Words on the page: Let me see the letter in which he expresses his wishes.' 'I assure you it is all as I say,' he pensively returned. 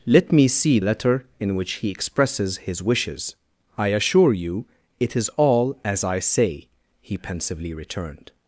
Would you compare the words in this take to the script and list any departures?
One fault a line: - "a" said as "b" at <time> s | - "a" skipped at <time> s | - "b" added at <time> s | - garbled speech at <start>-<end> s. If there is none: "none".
- "the" skipped at 0.8 s